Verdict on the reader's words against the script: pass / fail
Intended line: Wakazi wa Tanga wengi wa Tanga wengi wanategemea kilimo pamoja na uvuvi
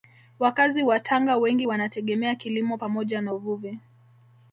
fail